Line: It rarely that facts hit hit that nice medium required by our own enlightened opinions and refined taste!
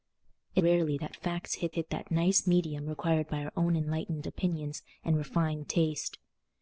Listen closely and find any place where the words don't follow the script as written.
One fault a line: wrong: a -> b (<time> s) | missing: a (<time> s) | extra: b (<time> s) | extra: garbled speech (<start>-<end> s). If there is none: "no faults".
no faults